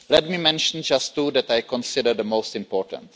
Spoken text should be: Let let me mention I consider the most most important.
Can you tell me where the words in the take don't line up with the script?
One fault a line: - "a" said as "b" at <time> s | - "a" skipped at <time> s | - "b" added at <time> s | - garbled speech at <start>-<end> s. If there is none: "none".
- "let" skipped at 0.3 s
- "just two that" added at 0.8 s
- "most" skipped at 2.5 s